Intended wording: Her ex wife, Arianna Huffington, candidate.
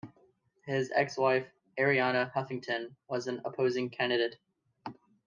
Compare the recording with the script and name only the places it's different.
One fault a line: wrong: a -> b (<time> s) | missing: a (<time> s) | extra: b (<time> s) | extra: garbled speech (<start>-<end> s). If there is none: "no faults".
wrong: Her -> His (0.7 s)
extra: was an opposing (3.1 s)